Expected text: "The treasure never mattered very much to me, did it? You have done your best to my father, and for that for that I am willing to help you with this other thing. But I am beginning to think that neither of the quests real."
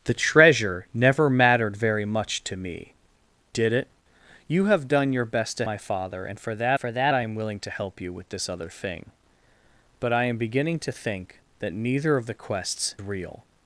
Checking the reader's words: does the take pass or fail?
pass